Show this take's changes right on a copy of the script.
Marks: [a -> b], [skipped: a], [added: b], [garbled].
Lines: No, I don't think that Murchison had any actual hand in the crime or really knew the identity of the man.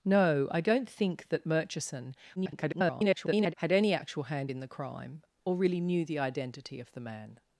No, I don't think that Murchison [garbled] had any actual hand in the crime or really knew the identity of the man.